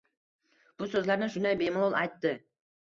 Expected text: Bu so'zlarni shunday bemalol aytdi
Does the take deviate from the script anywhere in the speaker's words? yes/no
no